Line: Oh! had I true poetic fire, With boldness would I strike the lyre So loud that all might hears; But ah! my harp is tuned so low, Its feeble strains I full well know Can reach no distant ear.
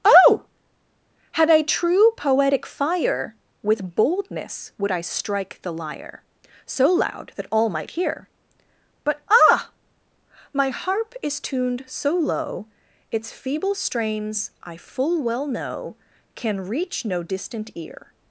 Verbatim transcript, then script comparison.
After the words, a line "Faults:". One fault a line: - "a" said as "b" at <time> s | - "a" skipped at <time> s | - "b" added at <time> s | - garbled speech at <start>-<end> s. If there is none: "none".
Oh! had I true poetic fire, With boldness would I strike the lyre So loud that all might hear; But ah! my harp is tuned so low, Its feeble strains I full well know Can reach no distant ear.
Faults:
- "hears" said as "hear" at 7.9 s